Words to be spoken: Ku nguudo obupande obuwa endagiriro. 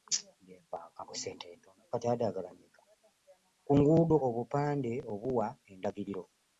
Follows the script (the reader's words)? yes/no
yes